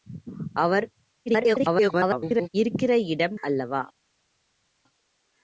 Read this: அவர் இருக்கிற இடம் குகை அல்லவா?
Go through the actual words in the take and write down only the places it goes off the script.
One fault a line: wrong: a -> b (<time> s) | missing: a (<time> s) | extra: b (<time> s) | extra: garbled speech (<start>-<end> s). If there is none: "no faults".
extra: garbled speech (1.3-2.5 s)
missing: குகை (3.4 s)